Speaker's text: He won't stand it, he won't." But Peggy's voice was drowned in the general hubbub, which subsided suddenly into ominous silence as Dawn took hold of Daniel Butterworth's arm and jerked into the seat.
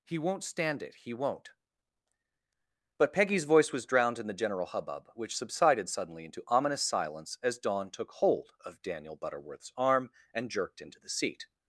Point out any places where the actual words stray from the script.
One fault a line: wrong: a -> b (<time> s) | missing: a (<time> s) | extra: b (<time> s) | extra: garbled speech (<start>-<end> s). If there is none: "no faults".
no faults